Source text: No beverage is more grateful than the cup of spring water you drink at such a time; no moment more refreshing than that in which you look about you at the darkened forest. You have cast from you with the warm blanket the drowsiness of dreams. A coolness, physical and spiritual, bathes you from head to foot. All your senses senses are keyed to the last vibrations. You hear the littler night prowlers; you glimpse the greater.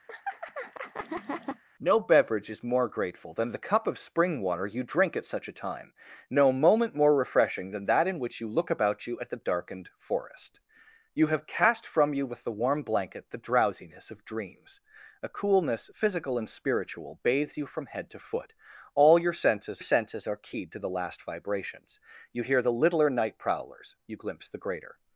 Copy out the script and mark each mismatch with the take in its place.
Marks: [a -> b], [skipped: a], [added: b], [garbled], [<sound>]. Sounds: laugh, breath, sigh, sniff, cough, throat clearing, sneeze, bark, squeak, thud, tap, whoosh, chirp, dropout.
[laugh] No beverage is more grateful than the cup of spring water you drink at such a time; no moment more refreshing than that in which you look about you at the darkened forest. You have cast from you with the warm blanket the drowsiness of dreams. A coolness, physical and spiritual, bathes you from head to foot. All your senses senses are keyed to the last vibrations. You hear the littler night prowlers; you glimpse the greater.